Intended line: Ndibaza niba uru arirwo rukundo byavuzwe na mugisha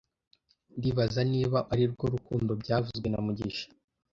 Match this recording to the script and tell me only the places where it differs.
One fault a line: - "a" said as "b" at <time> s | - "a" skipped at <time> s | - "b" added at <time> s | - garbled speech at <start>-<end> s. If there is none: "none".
- "uru" skipped at 1.6 s